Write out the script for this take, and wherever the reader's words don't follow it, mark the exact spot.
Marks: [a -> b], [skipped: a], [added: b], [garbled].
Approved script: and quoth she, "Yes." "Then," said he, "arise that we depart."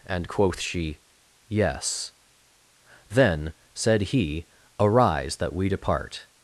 and quoth she, "Yes." "Then," said he, "arise that we depart."